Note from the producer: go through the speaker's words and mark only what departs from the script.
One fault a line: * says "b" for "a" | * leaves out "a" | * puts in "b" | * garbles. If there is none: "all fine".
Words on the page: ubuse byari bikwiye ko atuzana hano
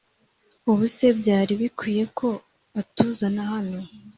all fine